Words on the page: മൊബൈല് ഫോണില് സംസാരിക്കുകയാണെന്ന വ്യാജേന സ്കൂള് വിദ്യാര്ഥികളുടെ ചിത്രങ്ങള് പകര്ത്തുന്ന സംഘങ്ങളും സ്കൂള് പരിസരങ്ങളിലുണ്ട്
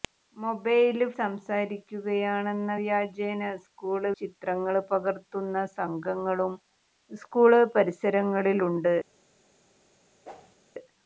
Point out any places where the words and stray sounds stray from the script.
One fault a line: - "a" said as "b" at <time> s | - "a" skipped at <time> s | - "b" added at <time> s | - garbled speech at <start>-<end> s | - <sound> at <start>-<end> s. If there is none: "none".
- "ഫോണില്" skipped at 1.1 s
- "വിദ്യാര്ഥികളുടെ" skipped at 4.1 s
- whoosh at 10.2-10.6 s